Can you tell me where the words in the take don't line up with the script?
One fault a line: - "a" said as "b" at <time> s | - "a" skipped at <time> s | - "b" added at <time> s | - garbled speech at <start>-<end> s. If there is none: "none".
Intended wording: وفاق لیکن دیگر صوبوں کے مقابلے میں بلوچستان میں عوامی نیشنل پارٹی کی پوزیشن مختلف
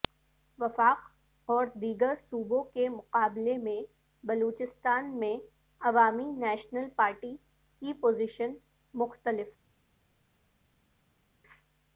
- "لیکن" said as "اور" at 1.5 s